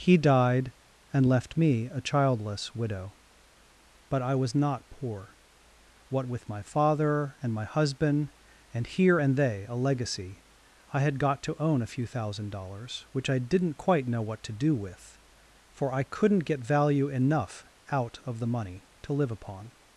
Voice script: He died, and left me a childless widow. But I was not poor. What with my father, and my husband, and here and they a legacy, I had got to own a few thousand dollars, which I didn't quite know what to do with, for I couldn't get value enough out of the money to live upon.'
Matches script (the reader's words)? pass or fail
pass